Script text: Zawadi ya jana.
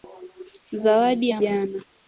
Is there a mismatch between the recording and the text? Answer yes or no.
no